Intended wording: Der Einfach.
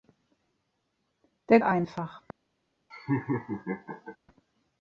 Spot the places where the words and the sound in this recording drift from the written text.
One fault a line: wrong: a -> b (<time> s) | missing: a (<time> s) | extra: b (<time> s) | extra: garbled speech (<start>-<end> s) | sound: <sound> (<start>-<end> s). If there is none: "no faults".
sound: laugh (2.9-4.2 s)